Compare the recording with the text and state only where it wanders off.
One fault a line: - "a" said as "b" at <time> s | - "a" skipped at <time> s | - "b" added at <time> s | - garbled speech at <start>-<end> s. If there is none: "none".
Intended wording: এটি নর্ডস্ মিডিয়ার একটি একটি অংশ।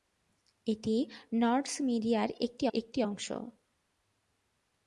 none